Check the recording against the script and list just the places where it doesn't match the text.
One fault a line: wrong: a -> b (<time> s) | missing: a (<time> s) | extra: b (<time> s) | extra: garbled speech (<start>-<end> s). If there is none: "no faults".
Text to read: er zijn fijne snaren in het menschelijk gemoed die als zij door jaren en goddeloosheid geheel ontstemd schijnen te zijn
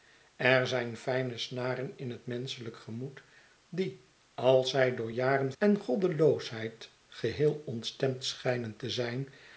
no faults